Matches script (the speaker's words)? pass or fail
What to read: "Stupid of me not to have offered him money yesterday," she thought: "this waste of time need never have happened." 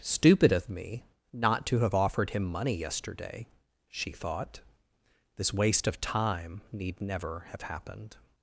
pass